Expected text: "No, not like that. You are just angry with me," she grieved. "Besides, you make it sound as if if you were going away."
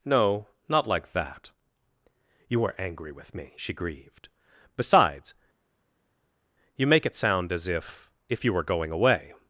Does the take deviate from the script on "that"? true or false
false